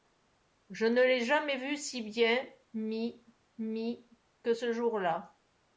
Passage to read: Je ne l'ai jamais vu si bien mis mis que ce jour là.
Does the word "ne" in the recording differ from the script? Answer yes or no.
no